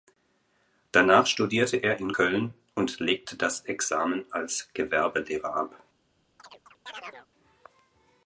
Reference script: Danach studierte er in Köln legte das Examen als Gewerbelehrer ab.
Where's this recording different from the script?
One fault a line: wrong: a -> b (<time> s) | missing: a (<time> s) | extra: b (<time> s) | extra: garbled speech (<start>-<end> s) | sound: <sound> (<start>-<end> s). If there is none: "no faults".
extra: und (2.7 s)
sound: chirp (6.4-7.3 s)